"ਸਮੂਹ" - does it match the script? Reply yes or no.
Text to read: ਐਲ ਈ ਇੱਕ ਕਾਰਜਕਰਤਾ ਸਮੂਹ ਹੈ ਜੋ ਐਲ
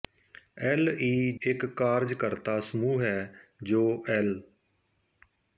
yes